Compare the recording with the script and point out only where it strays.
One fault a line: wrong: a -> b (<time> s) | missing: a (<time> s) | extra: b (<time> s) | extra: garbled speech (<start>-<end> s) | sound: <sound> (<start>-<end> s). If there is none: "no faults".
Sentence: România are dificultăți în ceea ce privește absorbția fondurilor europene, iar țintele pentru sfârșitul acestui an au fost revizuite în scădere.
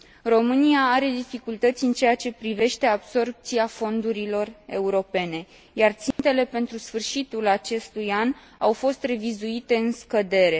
sound: dropout (6.1-6.2 s)